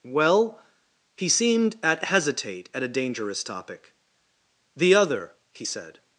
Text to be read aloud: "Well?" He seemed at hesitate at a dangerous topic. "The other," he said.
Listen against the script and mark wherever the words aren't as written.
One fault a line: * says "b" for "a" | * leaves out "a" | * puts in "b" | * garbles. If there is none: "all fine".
all fine